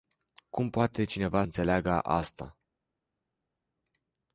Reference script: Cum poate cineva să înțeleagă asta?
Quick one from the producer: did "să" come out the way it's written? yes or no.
no